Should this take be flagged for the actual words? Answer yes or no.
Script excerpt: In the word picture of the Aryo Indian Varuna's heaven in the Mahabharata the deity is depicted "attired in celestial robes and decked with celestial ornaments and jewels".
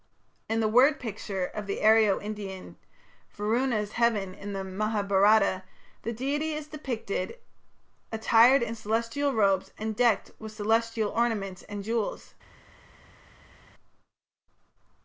no